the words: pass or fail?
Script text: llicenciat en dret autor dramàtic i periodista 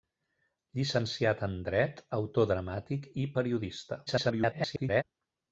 fail